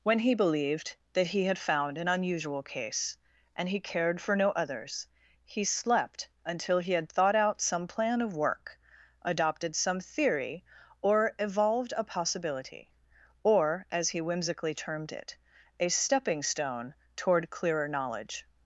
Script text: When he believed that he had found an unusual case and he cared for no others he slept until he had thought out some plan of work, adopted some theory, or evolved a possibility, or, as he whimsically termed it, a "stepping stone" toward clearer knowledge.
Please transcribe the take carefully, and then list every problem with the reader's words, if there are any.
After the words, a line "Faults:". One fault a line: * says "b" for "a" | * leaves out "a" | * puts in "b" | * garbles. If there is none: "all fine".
When he believed that he had found an unusual case and he cared for no others he slept until he had thought out some plan of work, adopted some theory, or evolved a possibility, or, as he whimsically termed it, a "stepping stone" toward clearer knowledge.
Faults:
all fine